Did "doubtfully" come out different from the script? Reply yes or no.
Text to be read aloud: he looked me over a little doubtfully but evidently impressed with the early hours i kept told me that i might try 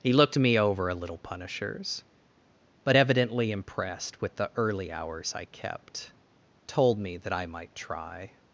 yes